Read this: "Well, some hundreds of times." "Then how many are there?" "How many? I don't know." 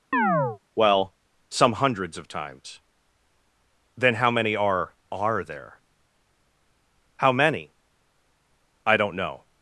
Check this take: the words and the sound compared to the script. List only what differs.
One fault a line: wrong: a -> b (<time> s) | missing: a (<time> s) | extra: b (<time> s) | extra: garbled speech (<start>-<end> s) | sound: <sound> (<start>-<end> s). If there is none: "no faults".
sound: chirp (0.1-0.6 s)
extra: are (5.1 s)